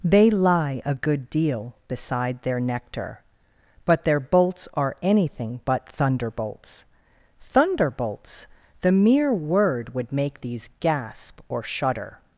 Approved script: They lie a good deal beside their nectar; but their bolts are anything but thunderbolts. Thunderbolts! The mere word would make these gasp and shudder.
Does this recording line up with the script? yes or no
no